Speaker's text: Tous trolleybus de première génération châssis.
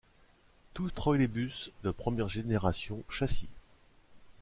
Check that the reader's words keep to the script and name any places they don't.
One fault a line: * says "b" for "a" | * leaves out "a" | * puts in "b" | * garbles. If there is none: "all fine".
all fine